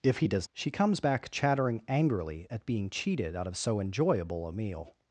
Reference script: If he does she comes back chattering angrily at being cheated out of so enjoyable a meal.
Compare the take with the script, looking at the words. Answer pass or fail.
pass